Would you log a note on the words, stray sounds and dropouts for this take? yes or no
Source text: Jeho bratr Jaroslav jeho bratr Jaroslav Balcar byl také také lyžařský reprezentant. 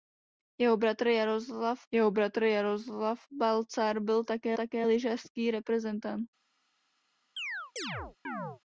yes